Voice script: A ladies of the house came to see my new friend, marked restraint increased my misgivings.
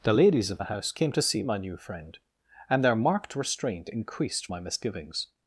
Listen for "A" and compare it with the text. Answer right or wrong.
wrong